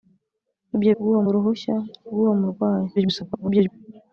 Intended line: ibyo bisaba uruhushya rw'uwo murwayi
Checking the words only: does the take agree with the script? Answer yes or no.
no